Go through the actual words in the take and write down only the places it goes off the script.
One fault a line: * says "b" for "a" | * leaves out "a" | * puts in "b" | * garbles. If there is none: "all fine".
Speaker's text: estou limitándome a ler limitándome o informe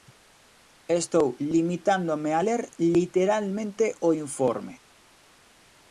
* says "literalmente" for "limitándome"